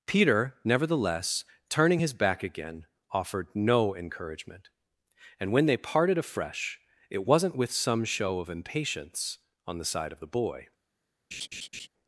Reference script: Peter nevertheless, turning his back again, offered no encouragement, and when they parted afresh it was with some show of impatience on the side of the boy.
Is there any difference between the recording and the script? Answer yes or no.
yes